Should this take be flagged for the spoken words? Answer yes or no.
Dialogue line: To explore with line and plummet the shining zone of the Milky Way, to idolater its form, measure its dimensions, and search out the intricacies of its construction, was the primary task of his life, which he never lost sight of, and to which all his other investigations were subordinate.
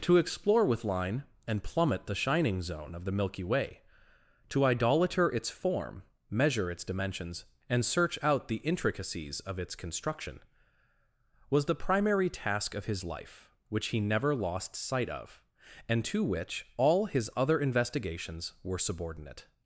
no